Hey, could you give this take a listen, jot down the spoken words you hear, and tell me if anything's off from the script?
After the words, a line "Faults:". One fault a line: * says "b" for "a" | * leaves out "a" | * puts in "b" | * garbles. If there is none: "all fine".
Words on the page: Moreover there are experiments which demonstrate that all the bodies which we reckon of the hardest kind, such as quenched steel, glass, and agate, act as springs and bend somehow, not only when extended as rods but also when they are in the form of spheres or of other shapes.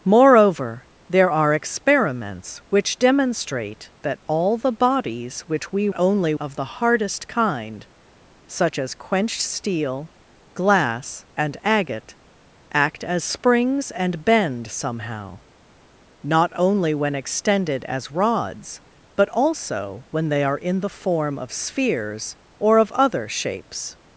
Moreover there are experiments which demonstrate that all the bodies which we only of the hardest kind, such as quenched steel, glass, and agate, act as springs and bend somehow, not only when extended as rods but also when they are in the form of spheres or of other shapes.
Faults:
* says "only" for "reckon"